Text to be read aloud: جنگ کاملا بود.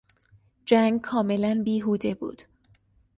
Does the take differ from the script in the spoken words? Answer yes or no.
yes